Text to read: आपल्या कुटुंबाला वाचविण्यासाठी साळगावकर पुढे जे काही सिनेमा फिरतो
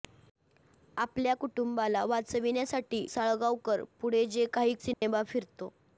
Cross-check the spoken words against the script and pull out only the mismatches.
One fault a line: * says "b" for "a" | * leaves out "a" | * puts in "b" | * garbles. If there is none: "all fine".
all fine